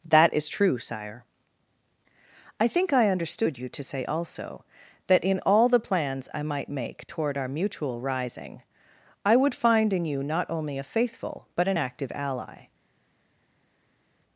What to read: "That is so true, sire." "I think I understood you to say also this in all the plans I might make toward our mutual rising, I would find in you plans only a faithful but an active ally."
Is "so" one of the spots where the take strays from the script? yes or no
yes